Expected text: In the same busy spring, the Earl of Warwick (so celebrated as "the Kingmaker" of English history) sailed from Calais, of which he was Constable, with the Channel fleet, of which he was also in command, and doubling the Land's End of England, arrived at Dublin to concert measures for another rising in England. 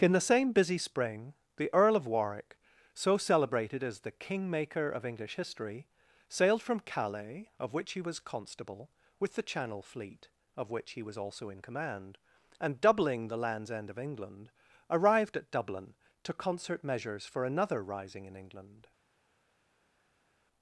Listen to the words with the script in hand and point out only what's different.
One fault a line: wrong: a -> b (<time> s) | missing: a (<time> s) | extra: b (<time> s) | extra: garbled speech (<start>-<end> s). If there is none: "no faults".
no faults